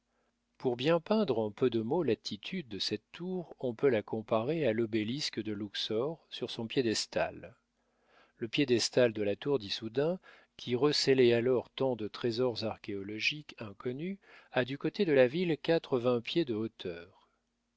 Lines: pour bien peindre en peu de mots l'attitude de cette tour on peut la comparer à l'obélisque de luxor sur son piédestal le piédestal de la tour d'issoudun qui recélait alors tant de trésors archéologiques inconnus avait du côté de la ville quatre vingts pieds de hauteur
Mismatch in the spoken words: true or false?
true